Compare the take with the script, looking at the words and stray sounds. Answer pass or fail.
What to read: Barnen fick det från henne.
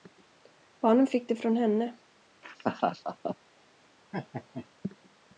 fail